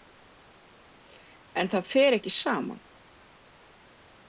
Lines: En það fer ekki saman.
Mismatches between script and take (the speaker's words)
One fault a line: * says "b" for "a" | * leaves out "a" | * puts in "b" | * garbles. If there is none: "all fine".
all fine